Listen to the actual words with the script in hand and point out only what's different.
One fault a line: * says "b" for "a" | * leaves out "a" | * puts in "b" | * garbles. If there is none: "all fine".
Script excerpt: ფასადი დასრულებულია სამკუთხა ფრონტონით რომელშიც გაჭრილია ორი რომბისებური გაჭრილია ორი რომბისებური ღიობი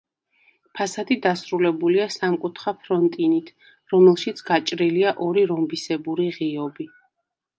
* leaves out "გაჭრილია ორი რომბისებური"